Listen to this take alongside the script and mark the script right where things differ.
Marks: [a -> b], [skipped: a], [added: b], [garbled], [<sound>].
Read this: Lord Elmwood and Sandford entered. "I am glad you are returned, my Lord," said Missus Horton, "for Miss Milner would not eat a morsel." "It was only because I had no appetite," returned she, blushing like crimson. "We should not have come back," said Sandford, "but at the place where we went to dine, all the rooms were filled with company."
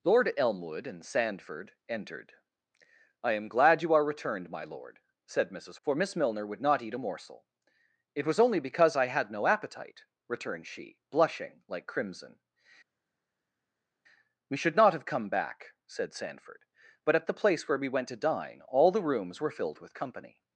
Lord Elmwood and Sandford entered. "I am glad you are returned, my Lord," said Missus [skipped: Horton,] "for Miss Milner would not eat a morsel." "It was only because I had no appetite," returned she, blushing like crimson. "We should not have come back," said Sandford, "but at the place where we went to dine, all the rooms were filled with company."